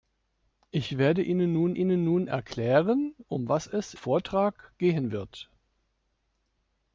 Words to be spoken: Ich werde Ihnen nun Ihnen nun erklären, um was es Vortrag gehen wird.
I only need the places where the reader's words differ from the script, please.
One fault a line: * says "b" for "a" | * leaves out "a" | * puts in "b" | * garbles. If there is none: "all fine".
all fine